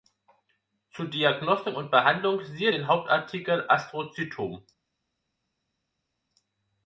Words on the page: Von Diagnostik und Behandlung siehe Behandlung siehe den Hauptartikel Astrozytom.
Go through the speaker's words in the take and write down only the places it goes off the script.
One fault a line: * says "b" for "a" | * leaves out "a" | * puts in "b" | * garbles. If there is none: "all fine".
* says "Zu" for "Von"
* leaves out "Behandlung siehe"